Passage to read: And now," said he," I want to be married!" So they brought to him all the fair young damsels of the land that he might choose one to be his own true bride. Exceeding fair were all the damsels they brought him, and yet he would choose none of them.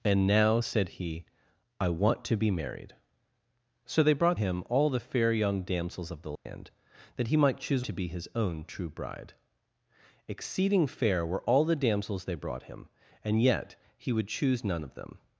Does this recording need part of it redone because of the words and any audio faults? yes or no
yes